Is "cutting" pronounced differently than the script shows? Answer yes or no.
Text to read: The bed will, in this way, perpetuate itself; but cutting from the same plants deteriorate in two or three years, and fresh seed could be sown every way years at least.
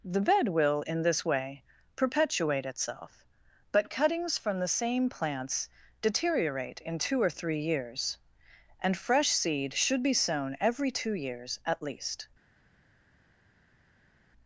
yes